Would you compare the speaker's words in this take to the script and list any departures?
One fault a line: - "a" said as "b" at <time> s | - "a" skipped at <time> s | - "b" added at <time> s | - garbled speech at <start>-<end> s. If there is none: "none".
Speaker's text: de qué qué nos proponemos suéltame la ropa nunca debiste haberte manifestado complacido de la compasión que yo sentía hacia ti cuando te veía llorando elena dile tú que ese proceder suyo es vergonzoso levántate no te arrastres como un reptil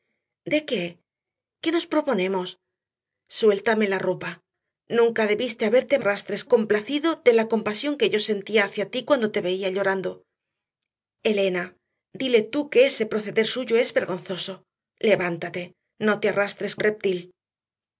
- "manifestado" said as "arrastres" at 6.0 s
- "como" skipped at 16.7 s